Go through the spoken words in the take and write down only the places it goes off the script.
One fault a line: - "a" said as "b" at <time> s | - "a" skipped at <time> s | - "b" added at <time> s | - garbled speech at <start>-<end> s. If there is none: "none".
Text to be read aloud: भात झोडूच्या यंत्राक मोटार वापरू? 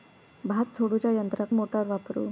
none